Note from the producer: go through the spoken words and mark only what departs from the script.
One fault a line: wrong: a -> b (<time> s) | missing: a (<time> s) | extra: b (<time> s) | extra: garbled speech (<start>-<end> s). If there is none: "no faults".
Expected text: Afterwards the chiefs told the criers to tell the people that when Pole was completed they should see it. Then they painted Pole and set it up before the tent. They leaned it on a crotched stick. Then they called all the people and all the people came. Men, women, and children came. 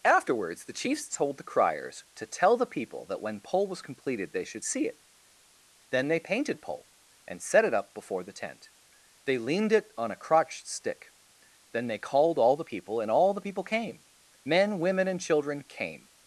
no faults